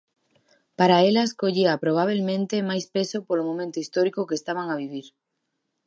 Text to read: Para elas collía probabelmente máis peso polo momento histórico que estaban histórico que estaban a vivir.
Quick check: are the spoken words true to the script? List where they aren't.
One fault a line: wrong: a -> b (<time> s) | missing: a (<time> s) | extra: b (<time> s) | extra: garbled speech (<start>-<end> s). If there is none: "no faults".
missing: histórico que estaban (4.7 s)